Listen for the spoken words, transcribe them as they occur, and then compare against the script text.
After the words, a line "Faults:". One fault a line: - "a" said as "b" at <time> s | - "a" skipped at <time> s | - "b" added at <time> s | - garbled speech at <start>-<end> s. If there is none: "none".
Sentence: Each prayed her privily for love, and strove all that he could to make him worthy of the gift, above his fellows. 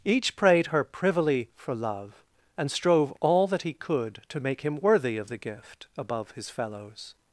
Each prayed her privily for love, and strove all that he could to make him worthy of the gift, above his fellows.
Faults:
none